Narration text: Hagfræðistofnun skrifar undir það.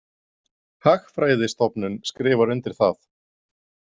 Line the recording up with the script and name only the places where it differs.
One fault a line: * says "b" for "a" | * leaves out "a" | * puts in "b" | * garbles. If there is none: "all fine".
all fine